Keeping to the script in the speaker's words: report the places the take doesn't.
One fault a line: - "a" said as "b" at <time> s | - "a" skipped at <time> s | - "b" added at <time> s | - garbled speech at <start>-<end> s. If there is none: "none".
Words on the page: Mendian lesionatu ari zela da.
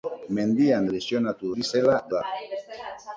none